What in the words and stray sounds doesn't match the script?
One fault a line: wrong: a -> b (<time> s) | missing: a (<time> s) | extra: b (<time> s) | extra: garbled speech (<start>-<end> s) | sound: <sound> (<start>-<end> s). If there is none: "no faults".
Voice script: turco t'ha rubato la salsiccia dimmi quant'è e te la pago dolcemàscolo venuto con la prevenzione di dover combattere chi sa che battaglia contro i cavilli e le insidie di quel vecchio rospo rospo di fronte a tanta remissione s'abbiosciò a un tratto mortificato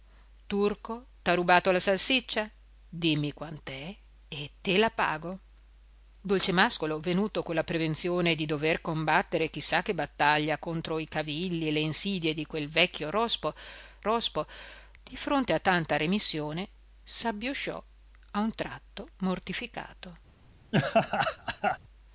sound: laugh (20.7-21.8 s)